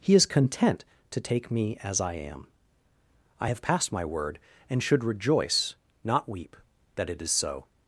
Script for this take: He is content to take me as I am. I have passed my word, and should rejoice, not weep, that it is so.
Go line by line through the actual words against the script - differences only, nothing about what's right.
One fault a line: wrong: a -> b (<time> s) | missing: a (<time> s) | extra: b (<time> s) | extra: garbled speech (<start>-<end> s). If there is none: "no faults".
no faults